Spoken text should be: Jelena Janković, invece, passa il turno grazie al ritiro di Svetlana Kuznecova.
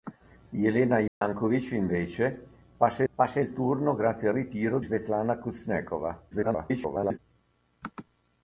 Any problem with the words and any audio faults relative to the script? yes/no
yes